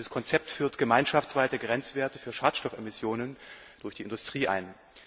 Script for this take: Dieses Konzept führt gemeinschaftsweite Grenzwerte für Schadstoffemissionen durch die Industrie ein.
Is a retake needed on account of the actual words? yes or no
no